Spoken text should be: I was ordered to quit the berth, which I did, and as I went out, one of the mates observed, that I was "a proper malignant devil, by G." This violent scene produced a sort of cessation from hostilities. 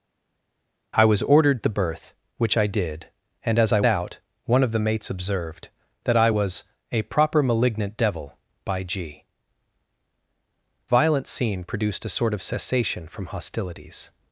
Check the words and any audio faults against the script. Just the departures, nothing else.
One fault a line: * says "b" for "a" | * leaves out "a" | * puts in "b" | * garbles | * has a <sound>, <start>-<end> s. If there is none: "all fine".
* leaves out "to quit"
* leaves out "went"
* leaves out "This"